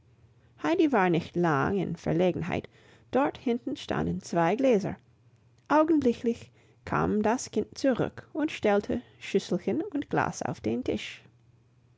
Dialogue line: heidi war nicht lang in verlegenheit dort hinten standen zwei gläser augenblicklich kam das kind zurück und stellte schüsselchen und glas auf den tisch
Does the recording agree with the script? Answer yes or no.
yes